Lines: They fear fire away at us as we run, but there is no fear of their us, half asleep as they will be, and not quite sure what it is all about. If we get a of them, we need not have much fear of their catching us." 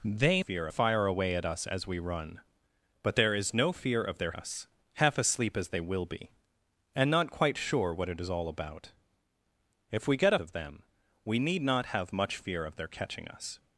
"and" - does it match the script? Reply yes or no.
yes